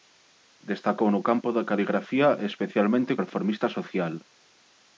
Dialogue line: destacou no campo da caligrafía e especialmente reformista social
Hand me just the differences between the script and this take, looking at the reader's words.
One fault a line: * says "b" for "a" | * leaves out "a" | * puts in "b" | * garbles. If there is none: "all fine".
all fine